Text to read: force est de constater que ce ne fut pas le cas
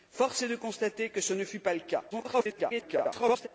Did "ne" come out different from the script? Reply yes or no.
no